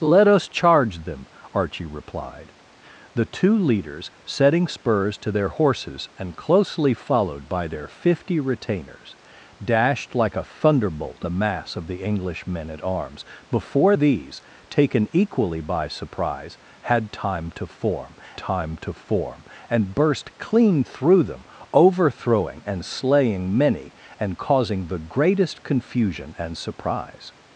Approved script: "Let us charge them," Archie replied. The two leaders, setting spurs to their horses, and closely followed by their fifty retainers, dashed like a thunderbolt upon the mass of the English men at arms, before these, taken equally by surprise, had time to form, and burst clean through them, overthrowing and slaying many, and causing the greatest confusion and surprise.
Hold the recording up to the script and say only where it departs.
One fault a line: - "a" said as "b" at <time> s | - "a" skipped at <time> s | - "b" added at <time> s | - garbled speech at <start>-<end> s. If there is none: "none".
- "upon" skipped at 11.2 s
- "time to form" added at 18.3 s